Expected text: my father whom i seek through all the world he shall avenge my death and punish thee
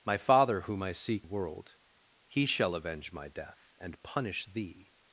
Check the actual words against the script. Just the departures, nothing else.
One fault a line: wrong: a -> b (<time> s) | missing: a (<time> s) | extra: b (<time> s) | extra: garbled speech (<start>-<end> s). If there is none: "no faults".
missing: through all the (1.3 s)